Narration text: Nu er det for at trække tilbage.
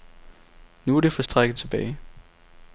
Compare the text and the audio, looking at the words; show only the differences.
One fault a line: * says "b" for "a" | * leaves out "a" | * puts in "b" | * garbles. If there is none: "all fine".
all fine